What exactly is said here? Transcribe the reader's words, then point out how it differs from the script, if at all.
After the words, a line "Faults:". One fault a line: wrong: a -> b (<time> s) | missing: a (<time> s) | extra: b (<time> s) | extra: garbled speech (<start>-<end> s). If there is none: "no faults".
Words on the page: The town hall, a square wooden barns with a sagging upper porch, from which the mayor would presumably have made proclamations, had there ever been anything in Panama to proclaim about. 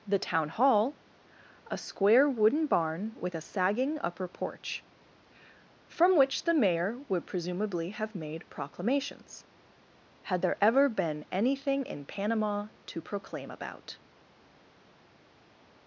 The town hall, a square wooden barn with a sagging upper porch, from which the mayor would presumably have made proclamations, had there ever been anything in Panama to proclaim about.
Faults:
wrong: barns -> barn (2.6 s)